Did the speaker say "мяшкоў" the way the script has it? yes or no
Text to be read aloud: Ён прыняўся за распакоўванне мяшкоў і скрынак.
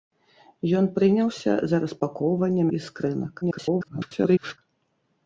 no